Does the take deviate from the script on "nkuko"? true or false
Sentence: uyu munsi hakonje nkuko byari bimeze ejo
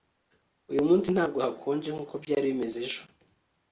false